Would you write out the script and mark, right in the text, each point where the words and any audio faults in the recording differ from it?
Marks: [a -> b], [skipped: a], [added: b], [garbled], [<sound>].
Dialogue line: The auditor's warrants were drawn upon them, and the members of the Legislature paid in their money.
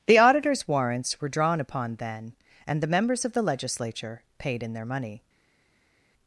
The auditor's warrants were drawn upon [them, -> then] and the members of the Legislature paid in their money.